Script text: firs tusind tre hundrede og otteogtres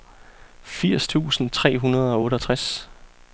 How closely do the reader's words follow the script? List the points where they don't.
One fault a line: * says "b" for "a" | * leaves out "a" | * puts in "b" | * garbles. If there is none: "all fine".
all fine